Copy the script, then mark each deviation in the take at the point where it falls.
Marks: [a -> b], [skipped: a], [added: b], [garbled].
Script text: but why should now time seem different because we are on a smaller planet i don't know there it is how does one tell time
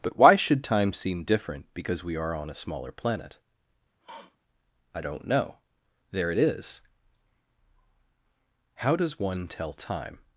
but why should [skipped: now] time seem different because we are on a smaller planet i don't know there it is how does one tell time